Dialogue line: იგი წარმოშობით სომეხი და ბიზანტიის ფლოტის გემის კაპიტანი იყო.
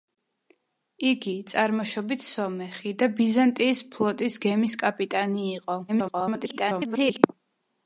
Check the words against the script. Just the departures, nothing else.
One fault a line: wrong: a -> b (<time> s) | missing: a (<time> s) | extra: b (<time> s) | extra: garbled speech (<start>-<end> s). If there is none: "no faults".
extra: garbled speech (5.9-7.2 s)